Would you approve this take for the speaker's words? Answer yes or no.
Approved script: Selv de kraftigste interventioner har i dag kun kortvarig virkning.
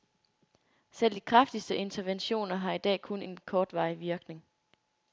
no